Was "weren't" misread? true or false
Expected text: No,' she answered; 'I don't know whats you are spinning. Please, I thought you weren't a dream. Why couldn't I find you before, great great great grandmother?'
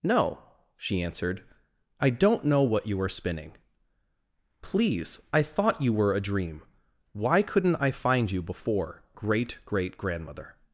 true